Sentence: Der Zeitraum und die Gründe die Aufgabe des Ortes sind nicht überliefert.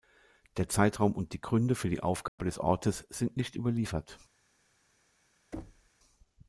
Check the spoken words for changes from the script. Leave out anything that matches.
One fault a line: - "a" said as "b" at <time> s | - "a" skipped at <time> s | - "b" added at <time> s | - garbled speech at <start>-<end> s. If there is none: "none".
- "für" added at 1.8 s